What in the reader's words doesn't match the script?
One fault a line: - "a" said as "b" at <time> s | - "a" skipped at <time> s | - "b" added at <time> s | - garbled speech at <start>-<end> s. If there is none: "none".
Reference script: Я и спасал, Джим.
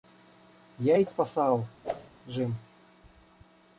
none